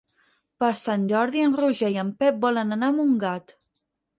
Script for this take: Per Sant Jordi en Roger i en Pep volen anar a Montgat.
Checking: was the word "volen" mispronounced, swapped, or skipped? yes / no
no